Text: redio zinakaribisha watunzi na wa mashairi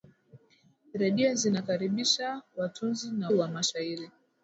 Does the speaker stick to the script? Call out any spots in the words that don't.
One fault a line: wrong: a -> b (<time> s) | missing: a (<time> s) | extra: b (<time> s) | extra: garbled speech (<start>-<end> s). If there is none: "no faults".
no faults